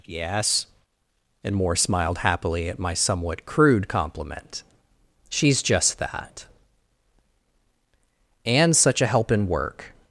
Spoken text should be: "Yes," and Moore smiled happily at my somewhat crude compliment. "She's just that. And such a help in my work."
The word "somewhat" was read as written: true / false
true